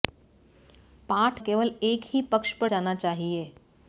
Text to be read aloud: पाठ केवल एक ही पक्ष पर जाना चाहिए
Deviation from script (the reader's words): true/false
false